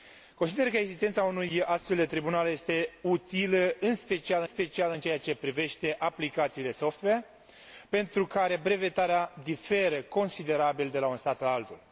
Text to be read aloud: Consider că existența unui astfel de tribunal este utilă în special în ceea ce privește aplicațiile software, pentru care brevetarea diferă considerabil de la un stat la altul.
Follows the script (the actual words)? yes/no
no